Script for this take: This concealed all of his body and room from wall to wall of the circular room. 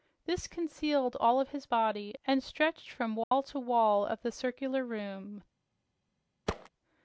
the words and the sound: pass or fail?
fail